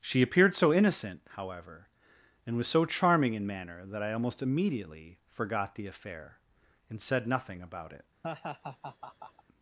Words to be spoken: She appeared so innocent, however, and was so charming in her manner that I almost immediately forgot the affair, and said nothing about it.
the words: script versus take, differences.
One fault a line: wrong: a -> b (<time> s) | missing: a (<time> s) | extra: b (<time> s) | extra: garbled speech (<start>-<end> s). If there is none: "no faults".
missing: her (3.5 s)